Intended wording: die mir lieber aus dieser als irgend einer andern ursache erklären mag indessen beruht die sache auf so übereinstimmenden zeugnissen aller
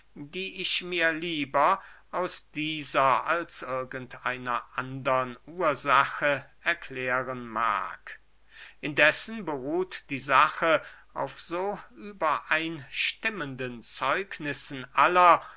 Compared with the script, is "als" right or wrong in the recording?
right